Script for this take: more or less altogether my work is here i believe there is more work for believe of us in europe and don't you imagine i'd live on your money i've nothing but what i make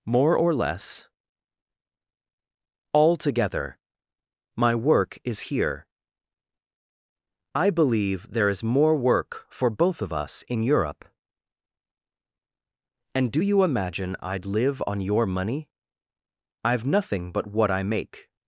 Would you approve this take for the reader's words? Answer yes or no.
no